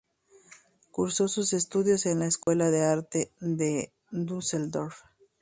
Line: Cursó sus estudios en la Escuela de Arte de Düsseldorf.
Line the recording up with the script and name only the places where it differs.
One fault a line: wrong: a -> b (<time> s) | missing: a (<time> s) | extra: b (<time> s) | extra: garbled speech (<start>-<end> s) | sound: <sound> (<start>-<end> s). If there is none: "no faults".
sound: dropout (2.4-2.5 s)